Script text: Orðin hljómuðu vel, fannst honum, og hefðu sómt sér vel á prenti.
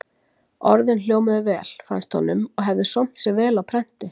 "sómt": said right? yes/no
yes